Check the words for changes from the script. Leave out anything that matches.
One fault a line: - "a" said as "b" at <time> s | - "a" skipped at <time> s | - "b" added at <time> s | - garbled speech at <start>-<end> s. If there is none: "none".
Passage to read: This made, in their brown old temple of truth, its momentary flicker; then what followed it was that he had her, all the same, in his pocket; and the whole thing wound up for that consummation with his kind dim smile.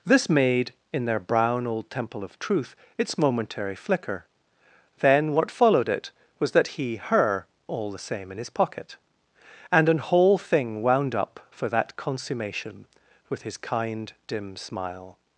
- "had" skipped at 6.9 s
- "the" said as "an" at 9.9 s